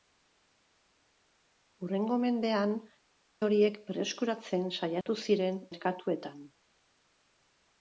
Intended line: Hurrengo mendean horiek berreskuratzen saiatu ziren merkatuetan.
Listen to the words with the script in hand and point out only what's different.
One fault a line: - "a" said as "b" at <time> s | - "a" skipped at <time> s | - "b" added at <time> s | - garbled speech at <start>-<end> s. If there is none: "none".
none